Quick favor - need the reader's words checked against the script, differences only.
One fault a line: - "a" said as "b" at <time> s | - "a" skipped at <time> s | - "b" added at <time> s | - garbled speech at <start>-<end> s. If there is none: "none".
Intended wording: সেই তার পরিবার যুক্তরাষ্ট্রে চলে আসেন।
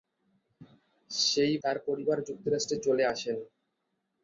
none